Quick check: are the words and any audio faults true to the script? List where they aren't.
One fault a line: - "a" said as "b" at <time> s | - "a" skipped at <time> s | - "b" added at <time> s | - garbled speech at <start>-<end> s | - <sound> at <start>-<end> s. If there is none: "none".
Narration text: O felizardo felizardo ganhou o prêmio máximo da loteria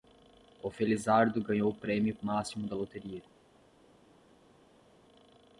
- "felizardo" skipped at 1.4 s